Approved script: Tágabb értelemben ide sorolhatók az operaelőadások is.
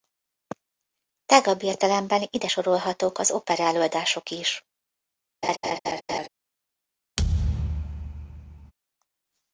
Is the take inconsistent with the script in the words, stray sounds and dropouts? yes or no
yes